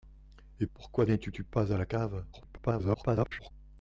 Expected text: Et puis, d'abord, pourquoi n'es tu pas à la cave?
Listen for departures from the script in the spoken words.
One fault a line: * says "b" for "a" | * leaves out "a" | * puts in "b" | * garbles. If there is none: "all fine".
* leaves out "puis d'abord"
* puts in "tu"
* garbles